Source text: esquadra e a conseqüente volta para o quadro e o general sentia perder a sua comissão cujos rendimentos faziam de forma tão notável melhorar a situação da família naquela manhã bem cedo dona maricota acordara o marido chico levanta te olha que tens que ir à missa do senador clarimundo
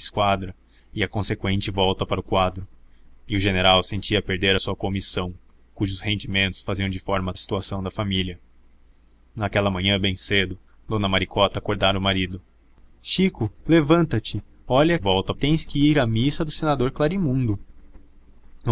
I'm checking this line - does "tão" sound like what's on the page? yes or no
no